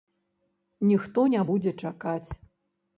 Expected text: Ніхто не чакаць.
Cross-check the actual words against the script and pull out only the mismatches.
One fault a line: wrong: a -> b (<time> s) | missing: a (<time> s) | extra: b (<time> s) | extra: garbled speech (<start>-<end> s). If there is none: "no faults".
extra: будзе (1.5 s)